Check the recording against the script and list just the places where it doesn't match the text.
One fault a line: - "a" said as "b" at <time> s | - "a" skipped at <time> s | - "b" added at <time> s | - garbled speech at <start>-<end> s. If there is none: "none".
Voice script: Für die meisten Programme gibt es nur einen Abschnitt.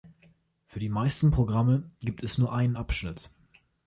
none